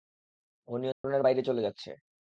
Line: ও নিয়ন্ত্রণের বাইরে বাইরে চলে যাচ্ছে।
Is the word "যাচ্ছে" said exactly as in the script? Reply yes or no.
yes